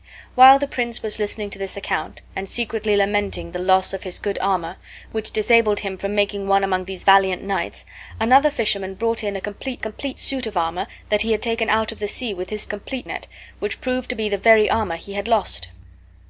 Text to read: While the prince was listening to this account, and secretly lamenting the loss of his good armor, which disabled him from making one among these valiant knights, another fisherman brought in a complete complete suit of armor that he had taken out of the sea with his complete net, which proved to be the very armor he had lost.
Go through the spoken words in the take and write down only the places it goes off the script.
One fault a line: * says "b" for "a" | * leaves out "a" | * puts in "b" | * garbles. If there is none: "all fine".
all fine